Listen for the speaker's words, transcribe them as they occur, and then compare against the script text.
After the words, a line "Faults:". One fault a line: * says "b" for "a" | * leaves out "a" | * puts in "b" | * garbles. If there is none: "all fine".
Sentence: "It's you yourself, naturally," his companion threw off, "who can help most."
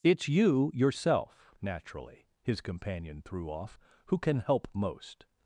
"It's you yourself, naturally," his companion threw off, "who can help most."
Faults:
all fine